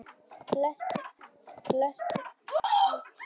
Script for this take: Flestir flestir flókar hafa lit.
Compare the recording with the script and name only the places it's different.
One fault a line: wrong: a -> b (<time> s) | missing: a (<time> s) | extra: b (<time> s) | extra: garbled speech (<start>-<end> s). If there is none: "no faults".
no faults